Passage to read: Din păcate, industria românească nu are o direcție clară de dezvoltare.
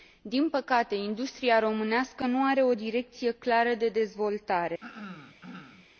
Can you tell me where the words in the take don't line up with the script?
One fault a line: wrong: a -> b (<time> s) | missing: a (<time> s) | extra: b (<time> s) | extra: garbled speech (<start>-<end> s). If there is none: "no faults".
no faults